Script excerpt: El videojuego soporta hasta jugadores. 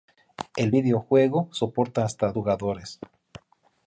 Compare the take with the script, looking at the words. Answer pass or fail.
pass